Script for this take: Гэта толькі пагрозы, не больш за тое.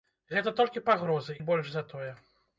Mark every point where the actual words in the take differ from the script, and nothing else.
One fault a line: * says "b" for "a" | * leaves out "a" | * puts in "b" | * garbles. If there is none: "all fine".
all fine